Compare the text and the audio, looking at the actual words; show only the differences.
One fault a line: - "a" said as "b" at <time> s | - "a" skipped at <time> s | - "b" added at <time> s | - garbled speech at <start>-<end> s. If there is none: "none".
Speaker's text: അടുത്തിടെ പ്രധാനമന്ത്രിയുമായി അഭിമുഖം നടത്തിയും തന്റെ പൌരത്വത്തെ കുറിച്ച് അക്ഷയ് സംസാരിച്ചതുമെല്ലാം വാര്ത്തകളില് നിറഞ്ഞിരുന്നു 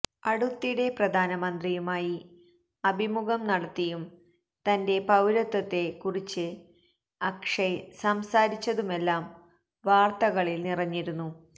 none